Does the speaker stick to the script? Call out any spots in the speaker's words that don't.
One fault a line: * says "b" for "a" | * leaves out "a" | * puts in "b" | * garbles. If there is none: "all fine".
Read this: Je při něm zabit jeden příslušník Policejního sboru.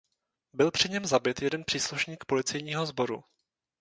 * says "Byl" for "Je"